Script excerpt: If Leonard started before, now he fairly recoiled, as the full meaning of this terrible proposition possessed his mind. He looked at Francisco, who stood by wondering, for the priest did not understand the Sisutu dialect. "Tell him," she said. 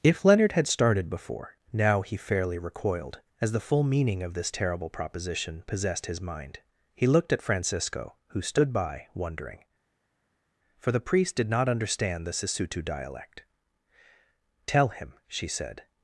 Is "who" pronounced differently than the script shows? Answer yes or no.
no